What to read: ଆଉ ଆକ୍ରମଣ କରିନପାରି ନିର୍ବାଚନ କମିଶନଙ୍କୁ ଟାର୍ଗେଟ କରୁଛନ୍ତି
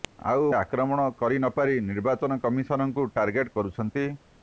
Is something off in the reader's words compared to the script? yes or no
no